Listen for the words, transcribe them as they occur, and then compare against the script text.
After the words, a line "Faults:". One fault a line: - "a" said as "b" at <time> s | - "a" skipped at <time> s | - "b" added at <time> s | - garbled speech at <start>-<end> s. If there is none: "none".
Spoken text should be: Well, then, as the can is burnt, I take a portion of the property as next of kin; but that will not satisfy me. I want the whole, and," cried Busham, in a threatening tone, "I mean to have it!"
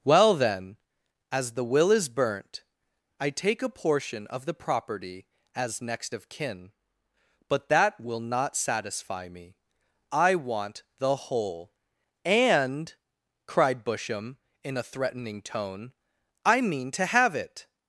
Well, then, as the will is burnt, I take a portion of the property as next of kin; but that will not satisfy me. I want the whole, and," cried Busham, in a threatening tone, "I mean to have it!"
Faults:
- "can" said as "will" at 1.6 s